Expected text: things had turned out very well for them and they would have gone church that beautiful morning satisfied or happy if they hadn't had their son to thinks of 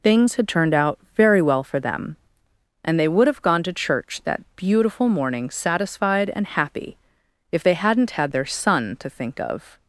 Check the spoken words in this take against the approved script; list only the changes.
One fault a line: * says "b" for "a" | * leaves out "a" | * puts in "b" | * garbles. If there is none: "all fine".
* puts in "to"
* says "and" for "or"
* says "think" for "thinks"